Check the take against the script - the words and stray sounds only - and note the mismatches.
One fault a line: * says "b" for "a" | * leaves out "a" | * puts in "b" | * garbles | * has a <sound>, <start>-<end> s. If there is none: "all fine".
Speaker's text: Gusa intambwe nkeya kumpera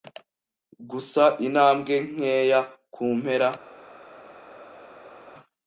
all fine